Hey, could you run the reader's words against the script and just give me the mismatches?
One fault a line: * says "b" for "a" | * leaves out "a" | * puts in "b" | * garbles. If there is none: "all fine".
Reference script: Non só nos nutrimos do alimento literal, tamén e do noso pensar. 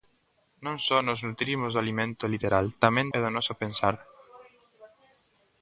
all fine